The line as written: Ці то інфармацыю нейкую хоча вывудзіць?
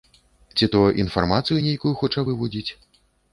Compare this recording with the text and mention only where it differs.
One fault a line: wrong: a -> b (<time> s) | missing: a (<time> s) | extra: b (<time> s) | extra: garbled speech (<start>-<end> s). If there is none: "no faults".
no faults